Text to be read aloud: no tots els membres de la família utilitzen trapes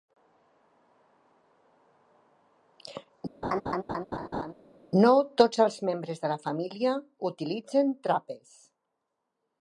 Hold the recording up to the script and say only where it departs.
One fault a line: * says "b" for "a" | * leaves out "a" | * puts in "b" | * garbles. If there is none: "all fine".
all fine